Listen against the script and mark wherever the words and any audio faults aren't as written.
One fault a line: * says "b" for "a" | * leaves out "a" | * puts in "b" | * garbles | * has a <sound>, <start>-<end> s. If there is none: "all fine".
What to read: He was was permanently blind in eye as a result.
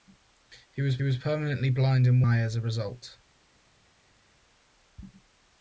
all fine